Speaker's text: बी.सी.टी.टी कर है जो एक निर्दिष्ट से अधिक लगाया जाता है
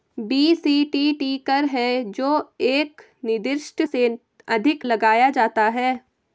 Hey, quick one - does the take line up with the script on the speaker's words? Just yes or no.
yes